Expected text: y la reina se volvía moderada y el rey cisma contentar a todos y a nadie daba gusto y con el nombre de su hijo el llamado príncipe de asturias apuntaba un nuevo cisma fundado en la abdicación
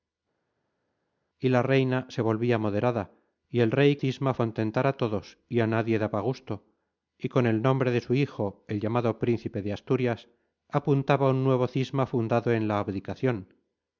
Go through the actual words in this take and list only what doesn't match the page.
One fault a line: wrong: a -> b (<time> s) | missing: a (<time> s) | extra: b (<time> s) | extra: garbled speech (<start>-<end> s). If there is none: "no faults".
no faults